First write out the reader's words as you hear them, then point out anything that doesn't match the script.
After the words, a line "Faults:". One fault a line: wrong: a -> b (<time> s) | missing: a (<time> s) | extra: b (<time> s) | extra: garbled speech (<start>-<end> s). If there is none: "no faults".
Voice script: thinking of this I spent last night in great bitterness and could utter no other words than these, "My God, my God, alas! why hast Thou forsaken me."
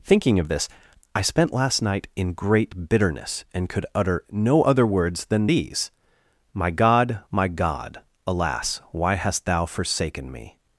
thinking of this I spent last night in great bitterness and could utter no other words than these, "My God, my God, alas! why hast Thou forsaken me."
Faults:
no faults